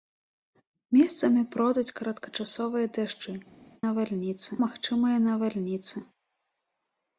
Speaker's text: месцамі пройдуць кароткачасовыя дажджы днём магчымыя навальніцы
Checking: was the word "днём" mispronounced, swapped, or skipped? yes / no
yes